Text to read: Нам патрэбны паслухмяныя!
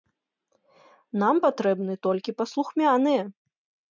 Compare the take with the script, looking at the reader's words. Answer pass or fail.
fail